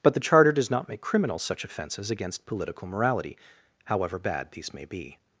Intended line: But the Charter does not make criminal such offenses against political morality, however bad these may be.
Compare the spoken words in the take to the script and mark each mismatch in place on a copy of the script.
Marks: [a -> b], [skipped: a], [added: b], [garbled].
But the Charter does not make criminal such offenses against political morality, however bad these may be.